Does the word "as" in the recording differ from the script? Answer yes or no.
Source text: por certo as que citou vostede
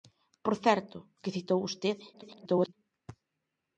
yes